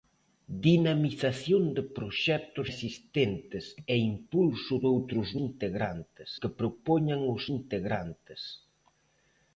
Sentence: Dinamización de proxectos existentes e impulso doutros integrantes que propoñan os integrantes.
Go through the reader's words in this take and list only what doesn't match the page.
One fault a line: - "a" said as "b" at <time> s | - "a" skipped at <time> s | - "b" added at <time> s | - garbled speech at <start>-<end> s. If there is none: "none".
none